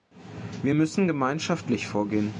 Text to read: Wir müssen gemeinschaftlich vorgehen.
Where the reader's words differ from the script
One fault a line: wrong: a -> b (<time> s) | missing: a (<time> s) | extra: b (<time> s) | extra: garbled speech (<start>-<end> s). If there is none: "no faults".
no faults